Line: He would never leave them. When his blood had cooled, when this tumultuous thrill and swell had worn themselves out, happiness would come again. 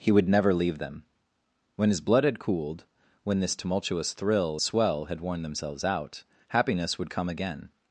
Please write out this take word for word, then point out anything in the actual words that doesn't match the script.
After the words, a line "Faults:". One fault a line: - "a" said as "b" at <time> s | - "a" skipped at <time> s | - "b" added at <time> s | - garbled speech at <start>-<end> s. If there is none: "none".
He would never leave them. When his blood had cooled, when this tumultuous thrill swell had worn themselves out, happiness would come again.
Faults:
- "and" skipped at 4.6 s